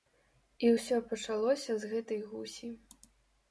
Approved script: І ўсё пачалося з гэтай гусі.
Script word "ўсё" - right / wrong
right